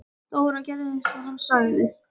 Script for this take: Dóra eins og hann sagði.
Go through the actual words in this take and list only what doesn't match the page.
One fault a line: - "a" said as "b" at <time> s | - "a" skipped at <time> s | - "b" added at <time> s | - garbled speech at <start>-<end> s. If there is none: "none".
- "gerði" added at 0.7 s